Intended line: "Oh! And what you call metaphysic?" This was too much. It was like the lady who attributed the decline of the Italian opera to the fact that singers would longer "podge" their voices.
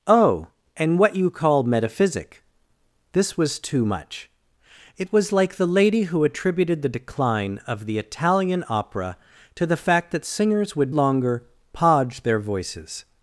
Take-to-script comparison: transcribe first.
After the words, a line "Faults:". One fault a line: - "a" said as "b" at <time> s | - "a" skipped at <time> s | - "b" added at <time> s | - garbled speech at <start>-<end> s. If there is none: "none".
"Oh! And what you call metaphysic?" This was too much. It was like the lady who attributed the decline of the Italian opera to the fact that singers would longer "podge" their voices.
Faults:
none